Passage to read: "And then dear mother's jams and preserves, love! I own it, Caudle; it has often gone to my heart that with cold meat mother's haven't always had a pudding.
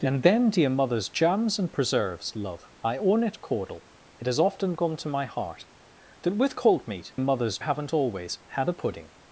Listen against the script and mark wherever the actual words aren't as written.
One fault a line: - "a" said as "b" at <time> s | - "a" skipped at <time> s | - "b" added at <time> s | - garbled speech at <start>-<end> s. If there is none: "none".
none